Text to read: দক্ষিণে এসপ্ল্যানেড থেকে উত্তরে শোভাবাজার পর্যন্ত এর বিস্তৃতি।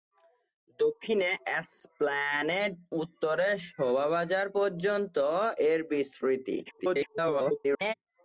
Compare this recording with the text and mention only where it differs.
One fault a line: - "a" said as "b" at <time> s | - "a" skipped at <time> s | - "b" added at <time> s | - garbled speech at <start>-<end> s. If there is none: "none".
- "থেকে" skipped at 2.7 s
- garbled speech at 6.7-7.9 s